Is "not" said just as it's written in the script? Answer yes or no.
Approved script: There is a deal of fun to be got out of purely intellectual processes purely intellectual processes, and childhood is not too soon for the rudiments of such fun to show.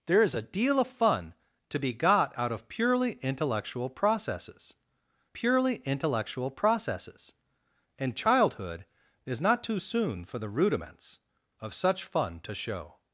yes